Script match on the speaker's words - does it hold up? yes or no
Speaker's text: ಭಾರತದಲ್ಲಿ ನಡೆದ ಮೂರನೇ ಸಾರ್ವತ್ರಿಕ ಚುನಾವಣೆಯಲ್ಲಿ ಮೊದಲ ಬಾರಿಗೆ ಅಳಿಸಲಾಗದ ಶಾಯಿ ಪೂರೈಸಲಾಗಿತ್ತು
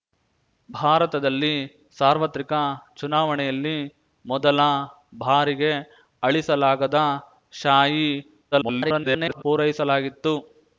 no